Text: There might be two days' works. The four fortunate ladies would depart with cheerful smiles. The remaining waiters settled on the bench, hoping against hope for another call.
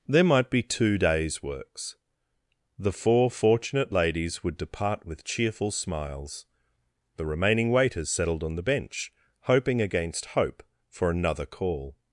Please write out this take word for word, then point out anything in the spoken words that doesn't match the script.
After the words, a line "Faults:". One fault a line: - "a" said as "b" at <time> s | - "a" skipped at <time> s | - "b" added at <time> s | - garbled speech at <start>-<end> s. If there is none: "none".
There might be two days' works. The four fortunate ladies would depart with cheerful smiles. The remaining waiters settled on the bench, hoping against hope for another call.
Faults:
none